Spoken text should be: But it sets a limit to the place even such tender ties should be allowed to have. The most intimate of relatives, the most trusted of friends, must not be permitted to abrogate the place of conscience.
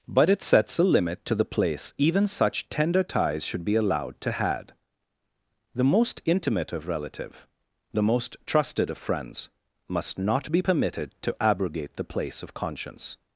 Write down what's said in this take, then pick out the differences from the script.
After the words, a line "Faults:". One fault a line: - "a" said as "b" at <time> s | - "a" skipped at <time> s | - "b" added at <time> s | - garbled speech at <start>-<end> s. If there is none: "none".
But it sets a limit to the place even such tender ties should be allowed to had. The most intimate of relative, the most trusted of friends, must not be permitted to abrogate the place of conscience.
Faults:
- "have" said as "had" at 4.3 s
- "relatives" said as "relative" at 6.9 s